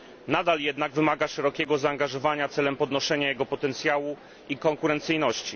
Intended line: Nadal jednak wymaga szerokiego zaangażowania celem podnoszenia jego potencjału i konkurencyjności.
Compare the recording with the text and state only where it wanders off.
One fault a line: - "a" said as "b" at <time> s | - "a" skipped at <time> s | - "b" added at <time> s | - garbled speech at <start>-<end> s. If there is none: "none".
none